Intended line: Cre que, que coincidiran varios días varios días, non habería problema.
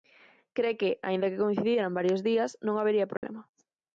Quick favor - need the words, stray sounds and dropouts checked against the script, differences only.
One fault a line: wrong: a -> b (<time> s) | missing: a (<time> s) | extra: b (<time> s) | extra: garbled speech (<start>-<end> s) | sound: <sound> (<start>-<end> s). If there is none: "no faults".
extra: aínda (1.1 s)
missing: varios días (2.5 s)
sound: dropout (3.2-3.2 s)